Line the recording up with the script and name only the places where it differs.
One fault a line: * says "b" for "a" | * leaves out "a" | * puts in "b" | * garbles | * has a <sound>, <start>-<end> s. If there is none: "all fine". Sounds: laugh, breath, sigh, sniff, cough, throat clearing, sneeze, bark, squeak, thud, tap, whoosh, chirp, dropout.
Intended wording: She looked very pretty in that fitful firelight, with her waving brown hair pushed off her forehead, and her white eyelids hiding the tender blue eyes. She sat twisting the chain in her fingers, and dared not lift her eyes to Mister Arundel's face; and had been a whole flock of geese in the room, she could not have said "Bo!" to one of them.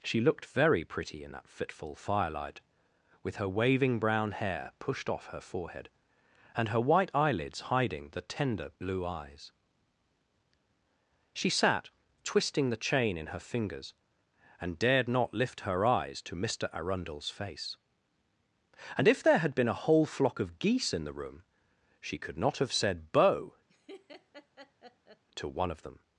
* puts in "if there"
* has a laugh, 23.7-25.2 s